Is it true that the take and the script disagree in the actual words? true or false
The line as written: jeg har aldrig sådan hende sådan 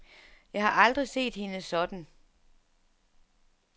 true